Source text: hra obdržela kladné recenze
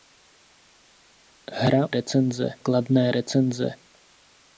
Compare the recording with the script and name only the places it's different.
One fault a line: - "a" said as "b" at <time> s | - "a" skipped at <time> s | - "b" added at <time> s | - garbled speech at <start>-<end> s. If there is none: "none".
- "obdržela" said as "recenze" at 1.9 s